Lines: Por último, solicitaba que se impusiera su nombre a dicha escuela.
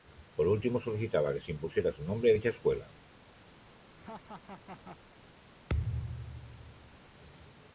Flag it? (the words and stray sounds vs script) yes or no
yes